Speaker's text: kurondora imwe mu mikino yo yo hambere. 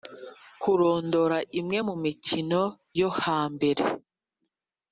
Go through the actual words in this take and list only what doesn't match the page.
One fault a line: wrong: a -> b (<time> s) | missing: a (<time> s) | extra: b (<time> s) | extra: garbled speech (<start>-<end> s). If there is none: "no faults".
missing: yo (3.1 s)